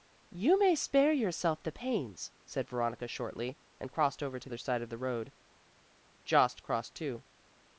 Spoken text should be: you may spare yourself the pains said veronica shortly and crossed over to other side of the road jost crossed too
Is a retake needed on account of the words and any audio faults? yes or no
no